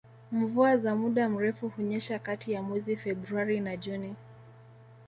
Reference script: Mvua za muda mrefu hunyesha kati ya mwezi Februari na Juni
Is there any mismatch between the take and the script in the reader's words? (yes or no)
no